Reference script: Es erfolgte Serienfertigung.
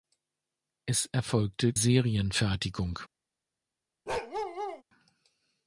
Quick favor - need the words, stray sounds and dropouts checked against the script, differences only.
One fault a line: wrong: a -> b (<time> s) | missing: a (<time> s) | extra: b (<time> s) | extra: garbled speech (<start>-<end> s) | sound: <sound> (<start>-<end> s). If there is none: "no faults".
sound: bark (4.1-4.8 s)